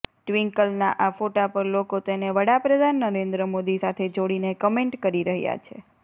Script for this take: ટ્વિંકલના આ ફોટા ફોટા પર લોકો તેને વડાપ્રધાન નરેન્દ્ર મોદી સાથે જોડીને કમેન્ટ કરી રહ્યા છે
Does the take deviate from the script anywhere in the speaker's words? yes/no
yes